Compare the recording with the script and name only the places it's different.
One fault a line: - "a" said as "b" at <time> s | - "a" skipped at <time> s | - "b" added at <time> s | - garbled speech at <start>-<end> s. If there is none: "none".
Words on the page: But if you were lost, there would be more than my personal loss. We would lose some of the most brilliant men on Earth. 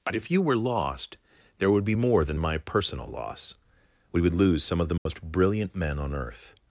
none